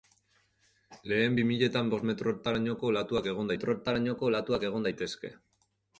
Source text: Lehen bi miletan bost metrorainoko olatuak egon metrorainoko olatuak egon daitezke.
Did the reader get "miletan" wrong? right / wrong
right